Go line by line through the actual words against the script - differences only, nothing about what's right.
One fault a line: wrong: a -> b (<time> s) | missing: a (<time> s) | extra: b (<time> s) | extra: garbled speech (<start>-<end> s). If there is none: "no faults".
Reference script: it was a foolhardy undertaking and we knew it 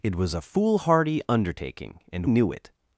missing: we (2.2 s)